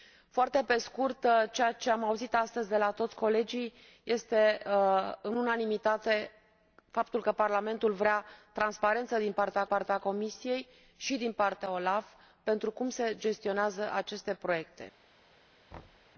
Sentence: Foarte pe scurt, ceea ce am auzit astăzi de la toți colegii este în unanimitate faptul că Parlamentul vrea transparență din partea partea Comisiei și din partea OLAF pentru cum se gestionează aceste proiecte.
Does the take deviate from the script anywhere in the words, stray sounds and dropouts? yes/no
yes